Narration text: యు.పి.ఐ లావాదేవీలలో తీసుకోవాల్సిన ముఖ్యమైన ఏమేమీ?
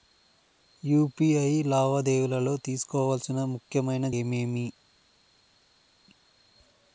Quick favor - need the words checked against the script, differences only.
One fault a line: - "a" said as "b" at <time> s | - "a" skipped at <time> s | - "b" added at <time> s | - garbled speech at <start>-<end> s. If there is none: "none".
none